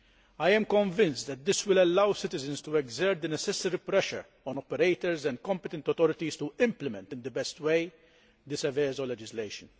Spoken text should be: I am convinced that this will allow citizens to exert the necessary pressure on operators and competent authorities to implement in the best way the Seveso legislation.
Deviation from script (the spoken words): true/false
false